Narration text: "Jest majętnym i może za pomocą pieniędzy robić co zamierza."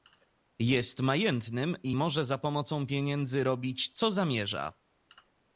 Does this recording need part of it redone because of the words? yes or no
no